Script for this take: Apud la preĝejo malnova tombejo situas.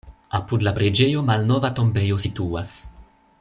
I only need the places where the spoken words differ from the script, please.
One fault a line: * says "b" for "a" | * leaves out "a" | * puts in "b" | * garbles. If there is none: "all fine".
all fine